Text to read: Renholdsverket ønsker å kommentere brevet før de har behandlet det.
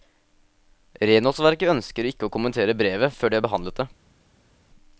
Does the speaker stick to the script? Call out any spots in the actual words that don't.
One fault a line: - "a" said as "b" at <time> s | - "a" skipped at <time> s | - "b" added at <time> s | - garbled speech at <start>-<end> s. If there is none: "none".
- "ikke" added at 2.1 s